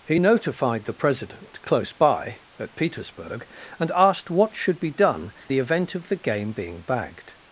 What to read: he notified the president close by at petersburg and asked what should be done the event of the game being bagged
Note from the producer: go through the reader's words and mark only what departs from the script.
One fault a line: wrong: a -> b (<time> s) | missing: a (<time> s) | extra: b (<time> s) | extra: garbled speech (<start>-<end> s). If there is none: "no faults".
no faults